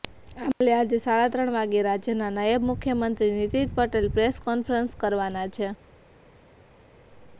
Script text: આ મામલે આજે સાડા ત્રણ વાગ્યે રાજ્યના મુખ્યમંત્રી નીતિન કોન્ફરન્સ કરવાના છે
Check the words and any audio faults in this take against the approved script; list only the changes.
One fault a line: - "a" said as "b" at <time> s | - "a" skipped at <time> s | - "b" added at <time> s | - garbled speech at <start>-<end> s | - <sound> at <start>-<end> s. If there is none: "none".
- "નાયબ" added at 2.3 s
- "પટેલ પ્રેસ" added at 3.8 s